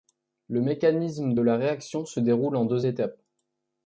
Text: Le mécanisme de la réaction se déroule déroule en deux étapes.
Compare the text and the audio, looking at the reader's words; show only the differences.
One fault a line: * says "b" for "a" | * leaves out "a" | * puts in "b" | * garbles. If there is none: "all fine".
* leaves out "déroule"